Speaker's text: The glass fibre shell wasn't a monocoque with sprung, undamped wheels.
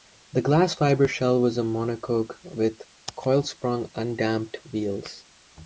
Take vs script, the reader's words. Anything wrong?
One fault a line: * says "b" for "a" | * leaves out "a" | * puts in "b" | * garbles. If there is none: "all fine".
* says "was" for "wasn't"
* puts in "coil"